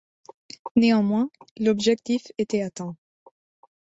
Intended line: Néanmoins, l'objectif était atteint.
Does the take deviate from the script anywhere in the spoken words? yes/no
no